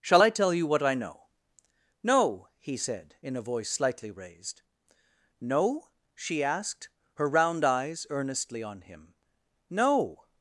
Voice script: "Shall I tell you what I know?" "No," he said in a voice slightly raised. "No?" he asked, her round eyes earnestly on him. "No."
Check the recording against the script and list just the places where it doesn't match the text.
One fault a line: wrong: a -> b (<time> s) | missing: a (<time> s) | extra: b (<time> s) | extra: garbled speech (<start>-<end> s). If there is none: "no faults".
wrong: he -> she (6.1 s)